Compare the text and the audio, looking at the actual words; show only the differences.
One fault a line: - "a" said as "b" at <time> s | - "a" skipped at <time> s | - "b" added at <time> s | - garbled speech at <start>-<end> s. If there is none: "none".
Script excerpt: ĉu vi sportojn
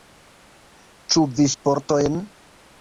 none